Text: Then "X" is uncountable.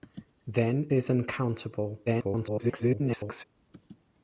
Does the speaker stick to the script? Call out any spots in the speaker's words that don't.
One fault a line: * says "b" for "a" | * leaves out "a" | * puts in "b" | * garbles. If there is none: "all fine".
* leaves out "X"
* garbles